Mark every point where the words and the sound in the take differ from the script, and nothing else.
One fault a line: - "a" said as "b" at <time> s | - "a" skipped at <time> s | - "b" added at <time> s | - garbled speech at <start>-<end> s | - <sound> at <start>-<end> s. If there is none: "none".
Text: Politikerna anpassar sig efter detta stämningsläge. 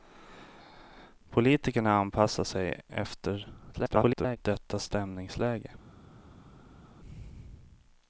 - garbled speech at 3.7-4.4 s